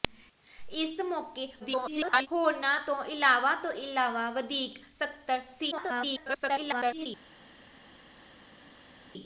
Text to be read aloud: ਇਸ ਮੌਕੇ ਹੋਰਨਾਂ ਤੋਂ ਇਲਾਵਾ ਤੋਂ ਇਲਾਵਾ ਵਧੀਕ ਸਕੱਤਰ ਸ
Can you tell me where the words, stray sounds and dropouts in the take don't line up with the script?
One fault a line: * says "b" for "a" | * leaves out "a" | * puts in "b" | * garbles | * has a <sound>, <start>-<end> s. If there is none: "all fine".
* garbles
* garbles